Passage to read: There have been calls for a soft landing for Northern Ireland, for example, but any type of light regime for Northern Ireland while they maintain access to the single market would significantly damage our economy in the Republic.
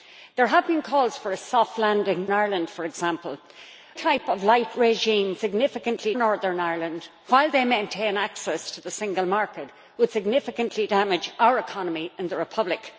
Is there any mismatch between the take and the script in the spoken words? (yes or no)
yes